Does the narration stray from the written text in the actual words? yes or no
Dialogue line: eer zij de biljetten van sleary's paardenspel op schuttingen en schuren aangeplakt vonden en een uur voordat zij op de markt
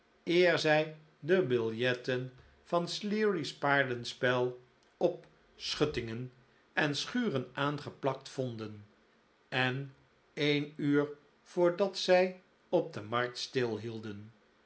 no